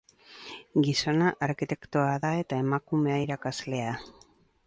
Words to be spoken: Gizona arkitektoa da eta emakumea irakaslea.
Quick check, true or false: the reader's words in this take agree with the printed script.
true